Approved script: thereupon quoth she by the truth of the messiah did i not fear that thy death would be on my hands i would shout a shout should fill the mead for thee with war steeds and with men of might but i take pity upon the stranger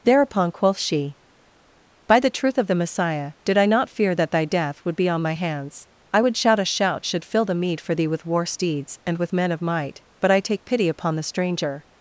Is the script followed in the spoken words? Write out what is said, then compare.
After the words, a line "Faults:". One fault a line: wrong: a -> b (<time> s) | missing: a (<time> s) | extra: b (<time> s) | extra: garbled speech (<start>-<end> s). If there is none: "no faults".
thereupon quoth she by the truth of the messiah did i not fear that thy death would be on my hands i would shout a shout should fill the mead for thee with war steeds and with men of might but i take pity upon the stranger
Faults:
no faults